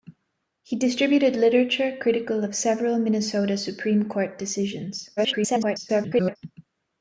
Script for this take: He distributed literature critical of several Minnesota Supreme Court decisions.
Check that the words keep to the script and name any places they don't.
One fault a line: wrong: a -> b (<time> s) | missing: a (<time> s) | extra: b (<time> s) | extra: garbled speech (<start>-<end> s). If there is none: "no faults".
extra: garbled speech (5.2-6.4 s)